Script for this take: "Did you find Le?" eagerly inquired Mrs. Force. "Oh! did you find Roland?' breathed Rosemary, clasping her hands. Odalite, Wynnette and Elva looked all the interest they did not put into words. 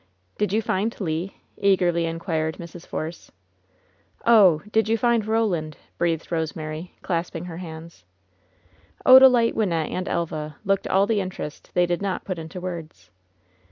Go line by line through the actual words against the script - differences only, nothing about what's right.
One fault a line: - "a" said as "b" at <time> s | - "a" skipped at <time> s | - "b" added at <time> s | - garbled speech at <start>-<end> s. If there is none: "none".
none